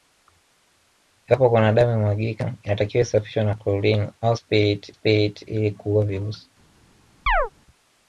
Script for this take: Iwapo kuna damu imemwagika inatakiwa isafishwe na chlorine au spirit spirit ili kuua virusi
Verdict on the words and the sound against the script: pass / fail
fail